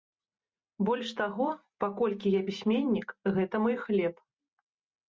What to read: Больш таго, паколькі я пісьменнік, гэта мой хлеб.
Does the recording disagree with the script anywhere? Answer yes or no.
no